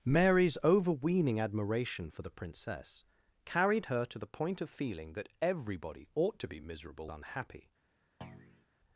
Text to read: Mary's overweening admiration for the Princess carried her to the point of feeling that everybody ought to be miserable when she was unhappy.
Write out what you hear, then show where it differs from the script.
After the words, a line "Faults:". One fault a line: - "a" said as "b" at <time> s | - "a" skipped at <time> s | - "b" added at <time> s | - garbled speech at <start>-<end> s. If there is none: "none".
Mary's overweening admiration for the Princess carried her to the point of feeling that everybody ought to be miserable unhappy.
Faults:
- "when she was" skipped at 7.1 s